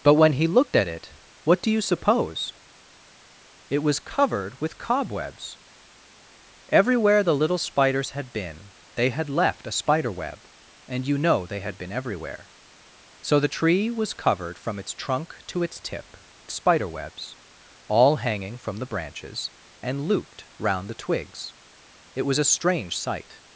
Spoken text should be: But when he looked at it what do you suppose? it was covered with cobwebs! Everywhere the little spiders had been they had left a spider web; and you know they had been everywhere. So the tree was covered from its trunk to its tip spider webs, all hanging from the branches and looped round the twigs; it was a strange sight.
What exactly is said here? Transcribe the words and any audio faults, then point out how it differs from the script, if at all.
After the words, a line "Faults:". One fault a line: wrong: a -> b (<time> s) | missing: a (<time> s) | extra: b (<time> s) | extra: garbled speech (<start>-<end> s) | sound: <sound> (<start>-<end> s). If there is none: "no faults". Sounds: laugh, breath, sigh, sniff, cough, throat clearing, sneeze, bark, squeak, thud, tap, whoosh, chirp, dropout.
But when he looked at it what do you suppose? it was covered with cobwebs! Everywhere the little spiders had been they had left a spider web; and you know they had been everywhere. So the tree was covered from its trunk to its tip spider webs, all hanging from the branches and looped round the twigs; it was a strange sight.
Faults:
no faults